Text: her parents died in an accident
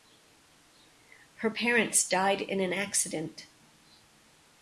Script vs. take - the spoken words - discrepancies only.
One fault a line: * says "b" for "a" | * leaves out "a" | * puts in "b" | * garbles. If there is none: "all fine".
all fine